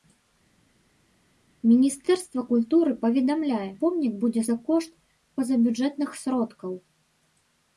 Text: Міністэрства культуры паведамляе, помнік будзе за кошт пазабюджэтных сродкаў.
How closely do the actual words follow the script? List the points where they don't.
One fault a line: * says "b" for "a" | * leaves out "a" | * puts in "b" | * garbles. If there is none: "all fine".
all fine